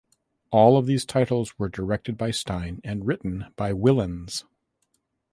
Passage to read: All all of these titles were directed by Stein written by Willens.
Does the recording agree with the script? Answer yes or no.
no